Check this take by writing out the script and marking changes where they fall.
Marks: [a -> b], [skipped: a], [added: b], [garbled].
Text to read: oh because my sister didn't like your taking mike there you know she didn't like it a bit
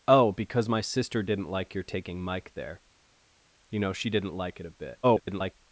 oh because my sister didn't like your taking mike there you know she didn't like it a bit [garbled]